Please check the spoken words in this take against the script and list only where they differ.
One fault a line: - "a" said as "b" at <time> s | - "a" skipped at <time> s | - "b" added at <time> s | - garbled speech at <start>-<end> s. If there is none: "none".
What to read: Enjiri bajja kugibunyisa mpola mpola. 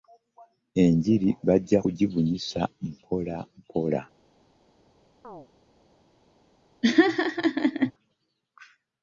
none